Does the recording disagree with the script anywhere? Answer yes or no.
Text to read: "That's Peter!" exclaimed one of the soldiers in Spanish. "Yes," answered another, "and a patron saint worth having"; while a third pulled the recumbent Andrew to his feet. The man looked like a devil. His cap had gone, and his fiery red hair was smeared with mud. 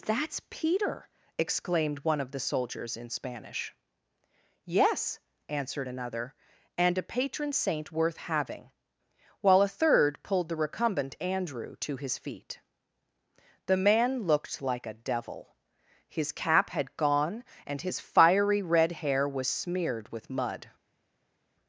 no